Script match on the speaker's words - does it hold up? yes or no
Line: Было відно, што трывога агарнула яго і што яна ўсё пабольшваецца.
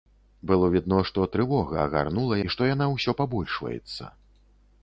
no